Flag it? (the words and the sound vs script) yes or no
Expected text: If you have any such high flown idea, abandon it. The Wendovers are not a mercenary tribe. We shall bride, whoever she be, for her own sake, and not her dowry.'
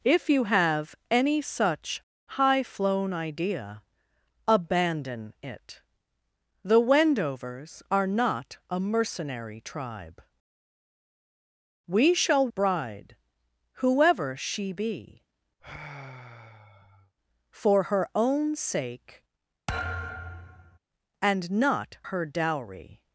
yes